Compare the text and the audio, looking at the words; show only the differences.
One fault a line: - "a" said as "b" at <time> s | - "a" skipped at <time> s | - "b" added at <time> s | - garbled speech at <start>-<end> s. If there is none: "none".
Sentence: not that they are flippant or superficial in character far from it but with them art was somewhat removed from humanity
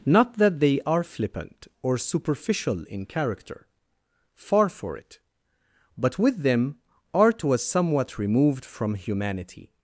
- "from" said as "for" at 4.7 s